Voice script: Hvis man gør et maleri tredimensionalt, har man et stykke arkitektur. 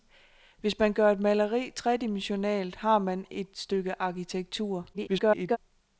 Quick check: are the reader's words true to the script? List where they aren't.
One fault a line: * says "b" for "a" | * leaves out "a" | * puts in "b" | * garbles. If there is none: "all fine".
* garbles